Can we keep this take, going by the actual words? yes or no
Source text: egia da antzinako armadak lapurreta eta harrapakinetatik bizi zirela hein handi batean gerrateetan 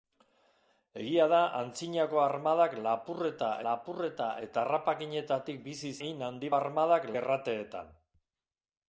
no